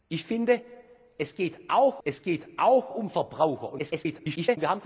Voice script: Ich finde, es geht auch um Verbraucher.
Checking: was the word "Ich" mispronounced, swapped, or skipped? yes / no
no